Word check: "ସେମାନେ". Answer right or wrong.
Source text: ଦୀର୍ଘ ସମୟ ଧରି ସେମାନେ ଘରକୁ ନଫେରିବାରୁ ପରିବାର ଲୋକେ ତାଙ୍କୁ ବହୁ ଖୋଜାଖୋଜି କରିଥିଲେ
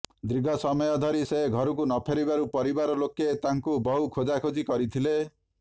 wrong